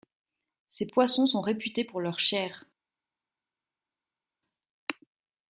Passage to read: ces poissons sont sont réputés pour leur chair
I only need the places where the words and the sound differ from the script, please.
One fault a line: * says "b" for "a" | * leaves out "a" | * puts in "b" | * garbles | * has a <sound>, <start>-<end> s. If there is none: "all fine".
* leaves out "sont"